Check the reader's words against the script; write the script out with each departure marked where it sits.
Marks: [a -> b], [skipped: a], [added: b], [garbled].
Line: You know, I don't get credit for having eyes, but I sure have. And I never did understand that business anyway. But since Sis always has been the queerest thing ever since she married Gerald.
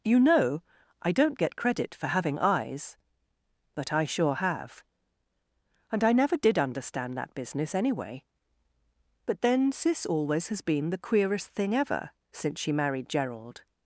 You know, I don't get credit for having eyes, but I sure have. And I never did understand that business anyway. But [since -> then] Sis always has been the queerest thing ever since she married Gerald.